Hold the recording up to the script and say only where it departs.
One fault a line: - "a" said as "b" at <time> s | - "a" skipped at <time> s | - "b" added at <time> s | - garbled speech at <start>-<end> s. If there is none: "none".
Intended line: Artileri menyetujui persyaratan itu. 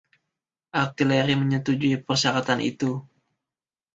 none